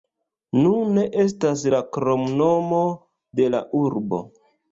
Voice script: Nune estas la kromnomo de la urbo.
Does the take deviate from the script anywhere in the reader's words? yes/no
no